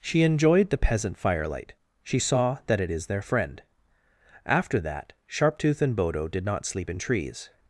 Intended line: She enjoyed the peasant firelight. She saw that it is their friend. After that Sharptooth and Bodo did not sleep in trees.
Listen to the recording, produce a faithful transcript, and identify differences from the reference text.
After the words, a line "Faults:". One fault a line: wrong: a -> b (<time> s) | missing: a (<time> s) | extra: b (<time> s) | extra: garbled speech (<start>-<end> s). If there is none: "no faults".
She enjoyed the peasant firelight. She saw that it is their friend. After that Sharptooth and Bodo did not sleep in trees.
Faults:
no faults